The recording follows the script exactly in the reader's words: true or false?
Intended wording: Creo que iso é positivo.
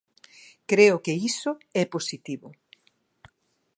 true